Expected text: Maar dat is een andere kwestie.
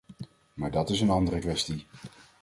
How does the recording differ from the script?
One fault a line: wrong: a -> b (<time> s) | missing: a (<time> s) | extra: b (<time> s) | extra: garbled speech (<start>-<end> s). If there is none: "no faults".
no faults